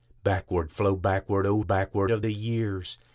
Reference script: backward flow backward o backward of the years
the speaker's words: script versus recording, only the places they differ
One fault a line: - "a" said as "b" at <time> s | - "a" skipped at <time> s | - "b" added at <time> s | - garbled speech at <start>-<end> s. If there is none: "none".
none